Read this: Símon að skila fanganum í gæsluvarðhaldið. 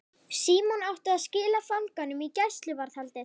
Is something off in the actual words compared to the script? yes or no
yes